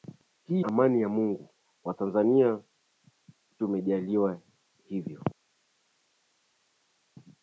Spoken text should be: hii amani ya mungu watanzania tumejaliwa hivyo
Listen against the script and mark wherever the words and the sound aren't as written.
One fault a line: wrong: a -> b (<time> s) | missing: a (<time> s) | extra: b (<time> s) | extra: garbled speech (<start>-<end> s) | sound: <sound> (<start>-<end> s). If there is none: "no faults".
no faults